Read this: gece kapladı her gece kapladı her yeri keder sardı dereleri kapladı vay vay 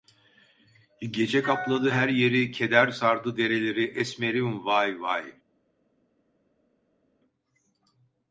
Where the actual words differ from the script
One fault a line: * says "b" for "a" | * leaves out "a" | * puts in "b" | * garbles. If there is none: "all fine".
* leaves out "gece kapladı her"
* says "esmerim" for "kapladı"